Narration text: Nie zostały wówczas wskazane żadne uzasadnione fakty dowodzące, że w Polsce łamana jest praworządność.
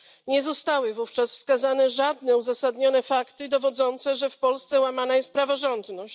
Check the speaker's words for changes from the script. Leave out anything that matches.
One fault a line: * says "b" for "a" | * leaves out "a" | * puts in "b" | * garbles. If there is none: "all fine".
all fine